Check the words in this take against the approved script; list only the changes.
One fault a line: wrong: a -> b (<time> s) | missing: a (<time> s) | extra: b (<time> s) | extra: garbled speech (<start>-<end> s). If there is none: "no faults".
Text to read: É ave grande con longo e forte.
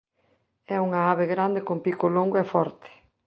extra: unha (0.9 s)
extra: pico (1.9 s)